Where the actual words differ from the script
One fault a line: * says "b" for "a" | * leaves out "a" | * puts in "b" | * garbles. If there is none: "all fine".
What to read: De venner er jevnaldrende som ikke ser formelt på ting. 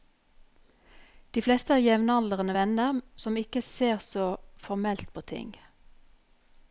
* says "fleste" for "venner"
* puts in "venner"
* puts in "så"